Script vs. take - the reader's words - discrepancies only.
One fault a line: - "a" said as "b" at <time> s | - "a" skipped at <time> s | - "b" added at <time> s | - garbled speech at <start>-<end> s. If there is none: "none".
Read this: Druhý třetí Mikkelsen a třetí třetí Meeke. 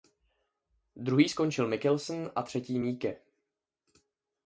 - "třetí" said as "skončil" at 1.3 s
- "třetí" skipped at 2.8 s